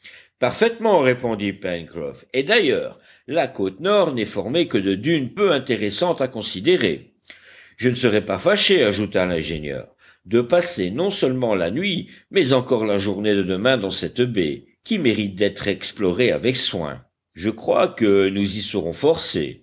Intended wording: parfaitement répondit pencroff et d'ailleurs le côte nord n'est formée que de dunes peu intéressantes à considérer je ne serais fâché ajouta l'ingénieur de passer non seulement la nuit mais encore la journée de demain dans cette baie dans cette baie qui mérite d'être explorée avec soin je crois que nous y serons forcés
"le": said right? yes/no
no